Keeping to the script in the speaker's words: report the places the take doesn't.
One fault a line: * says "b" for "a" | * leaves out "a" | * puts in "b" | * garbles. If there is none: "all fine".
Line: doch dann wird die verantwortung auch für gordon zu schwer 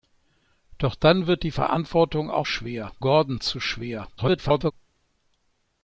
* says "schwer" for "für"
* garbles